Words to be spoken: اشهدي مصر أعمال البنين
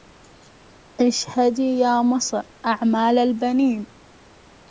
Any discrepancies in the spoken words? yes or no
yes